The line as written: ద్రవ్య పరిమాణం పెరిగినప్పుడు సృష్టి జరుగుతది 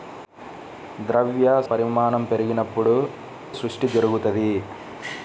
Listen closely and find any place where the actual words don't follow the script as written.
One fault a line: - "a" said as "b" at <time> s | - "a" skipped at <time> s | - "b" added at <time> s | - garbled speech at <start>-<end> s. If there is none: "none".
none